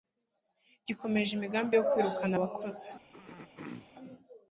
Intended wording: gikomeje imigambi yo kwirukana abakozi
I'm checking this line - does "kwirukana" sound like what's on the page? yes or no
yes